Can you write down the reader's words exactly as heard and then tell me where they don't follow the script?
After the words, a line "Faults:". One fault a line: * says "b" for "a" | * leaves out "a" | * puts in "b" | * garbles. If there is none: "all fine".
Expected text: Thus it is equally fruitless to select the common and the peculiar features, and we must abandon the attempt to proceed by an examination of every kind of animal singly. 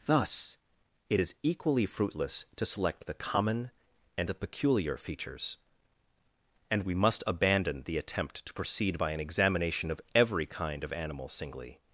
Thus it is equally fruitless to select the common and the peculiar features, and we must abandon the attempt to proceed by an examination of every kind of animal singly.
Faults:
all fine